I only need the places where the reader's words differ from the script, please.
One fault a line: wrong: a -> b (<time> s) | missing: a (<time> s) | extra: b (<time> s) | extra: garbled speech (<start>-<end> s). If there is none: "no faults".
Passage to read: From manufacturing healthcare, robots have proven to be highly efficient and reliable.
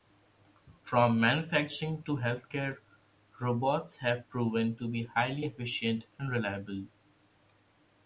extra: to (2.0 s)